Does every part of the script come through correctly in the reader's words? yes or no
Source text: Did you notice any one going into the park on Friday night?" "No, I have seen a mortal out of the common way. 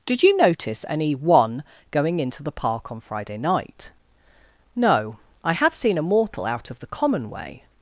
yes